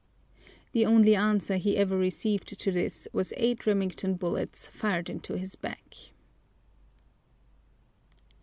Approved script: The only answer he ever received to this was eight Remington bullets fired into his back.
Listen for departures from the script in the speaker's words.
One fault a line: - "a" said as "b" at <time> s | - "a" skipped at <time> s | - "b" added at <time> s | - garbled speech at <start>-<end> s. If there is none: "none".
none